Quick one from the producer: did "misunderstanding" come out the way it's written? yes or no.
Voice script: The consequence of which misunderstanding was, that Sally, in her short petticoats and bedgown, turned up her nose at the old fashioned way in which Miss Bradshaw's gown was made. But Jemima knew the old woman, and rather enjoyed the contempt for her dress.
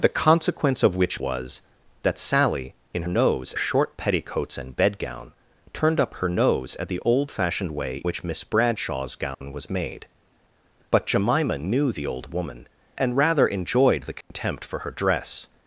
no